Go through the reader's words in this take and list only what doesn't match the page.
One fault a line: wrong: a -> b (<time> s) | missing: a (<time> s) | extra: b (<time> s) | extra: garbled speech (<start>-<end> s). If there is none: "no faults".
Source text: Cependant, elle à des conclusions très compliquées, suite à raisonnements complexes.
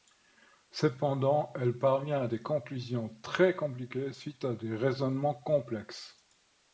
extra: parvient (1.8 s)
extra: des (4.5 s)